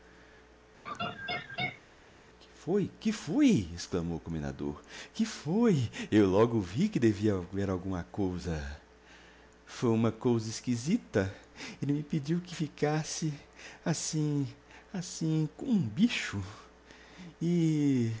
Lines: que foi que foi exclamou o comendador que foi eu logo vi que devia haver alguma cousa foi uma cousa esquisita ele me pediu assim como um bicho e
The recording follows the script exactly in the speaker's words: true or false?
false